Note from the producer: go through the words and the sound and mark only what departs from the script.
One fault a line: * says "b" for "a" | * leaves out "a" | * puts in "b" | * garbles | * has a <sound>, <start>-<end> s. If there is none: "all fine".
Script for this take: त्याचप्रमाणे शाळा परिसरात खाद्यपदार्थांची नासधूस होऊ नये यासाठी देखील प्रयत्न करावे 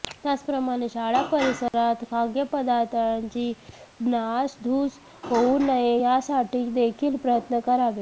* has a dropout, 1.7-1.7 s